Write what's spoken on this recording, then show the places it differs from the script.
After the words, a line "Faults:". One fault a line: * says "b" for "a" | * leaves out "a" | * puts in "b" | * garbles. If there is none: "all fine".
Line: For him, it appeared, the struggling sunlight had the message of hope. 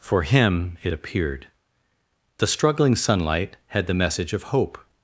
For him, it appeared, the struggling sunlight had the message of hope.
Faults:
all fine